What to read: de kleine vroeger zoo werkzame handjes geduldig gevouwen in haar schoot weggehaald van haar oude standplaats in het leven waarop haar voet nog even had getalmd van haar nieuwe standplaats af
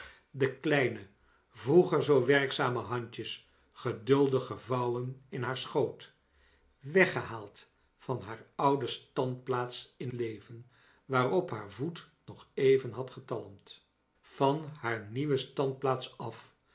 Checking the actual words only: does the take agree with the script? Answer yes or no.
no